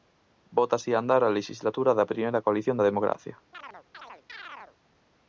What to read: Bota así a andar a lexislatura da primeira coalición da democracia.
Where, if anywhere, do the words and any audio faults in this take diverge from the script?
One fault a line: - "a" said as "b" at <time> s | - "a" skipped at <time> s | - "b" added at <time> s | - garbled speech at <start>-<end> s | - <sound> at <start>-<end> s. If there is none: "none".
- chirp at 3.5-4.8 s